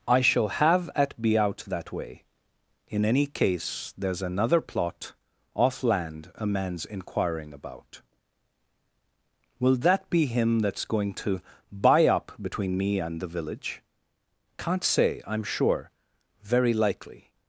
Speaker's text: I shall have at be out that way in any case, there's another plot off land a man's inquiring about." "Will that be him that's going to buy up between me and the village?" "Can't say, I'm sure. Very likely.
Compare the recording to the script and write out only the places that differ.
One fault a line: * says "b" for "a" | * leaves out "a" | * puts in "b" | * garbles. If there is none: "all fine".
all fine